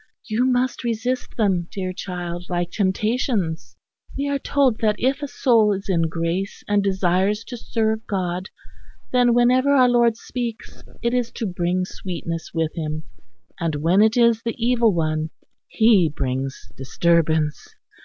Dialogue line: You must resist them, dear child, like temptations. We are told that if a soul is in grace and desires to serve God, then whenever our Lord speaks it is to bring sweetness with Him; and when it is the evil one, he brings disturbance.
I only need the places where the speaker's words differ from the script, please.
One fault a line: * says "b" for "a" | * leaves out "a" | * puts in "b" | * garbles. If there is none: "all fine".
all fine